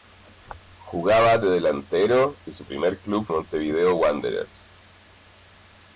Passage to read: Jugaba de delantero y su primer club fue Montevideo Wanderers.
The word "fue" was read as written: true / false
false